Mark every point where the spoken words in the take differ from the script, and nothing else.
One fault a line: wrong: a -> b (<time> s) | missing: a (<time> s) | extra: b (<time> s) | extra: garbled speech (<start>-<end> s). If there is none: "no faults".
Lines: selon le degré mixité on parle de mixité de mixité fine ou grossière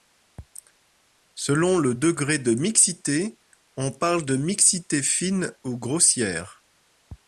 extra: de (2.4 s)
missing: de mixité (5.0 s)